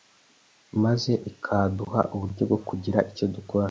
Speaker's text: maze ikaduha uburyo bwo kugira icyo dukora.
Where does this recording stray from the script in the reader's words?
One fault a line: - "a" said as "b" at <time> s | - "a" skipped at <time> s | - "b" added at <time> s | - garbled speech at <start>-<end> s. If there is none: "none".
none